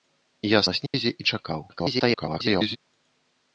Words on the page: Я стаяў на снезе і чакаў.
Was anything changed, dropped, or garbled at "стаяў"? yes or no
yes